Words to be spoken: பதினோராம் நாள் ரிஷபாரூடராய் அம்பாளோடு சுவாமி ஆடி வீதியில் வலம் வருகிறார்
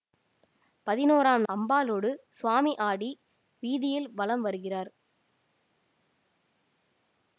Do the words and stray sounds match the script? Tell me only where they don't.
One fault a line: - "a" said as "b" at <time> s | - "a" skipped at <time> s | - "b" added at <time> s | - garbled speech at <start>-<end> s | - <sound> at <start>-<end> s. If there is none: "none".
- "நாள் ரிஷபாரூடராய்" skipped at 1.4 s